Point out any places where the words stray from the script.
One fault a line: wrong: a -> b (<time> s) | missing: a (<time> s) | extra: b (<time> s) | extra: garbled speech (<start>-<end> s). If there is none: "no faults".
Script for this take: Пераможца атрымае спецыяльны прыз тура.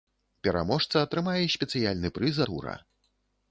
no faults